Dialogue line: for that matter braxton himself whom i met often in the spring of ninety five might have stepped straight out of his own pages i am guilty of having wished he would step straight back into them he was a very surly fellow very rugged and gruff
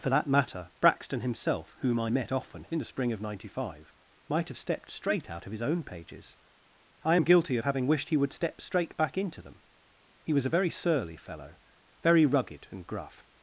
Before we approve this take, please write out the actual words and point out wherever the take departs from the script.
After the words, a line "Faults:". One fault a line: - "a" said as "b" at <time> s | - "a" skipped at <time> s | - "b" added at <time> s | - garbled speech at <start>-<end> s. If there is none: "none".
for that matter braxton himself whom i met often in the spring of ninety five might have stepped straight out of his own pages i am guilty of having wished he would step straight back into them he was a very surly fellow very rugged and gruff
Faults:
none